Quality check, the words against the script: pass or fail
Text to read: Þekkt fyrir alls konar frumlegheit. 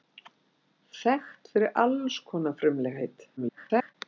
fail